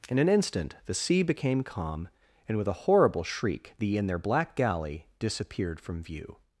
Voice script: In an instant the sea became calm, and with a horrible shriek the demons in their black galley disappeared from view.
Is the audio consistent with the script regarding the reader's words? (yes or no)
no